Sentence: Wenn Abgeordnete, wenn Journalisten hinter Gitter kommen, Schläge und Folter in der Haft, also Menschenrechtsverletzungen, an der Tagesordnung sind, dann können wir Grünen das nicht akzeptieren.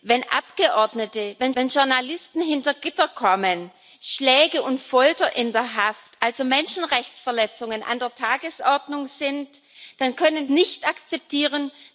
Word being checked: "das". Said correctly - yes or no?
no